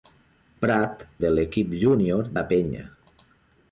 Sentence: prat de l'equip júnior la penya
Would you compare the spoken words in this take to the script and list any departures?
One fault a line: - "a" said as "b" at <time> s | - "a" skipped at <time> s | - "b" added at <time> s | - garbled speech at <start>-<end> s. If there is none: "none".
none